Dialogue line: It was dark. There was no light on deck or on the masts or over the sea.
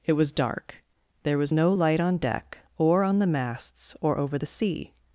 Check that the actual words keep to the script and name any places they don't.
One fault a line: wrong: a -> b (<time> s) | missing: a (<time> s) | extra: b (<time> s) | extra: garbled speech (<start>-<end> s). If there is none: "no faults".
no faults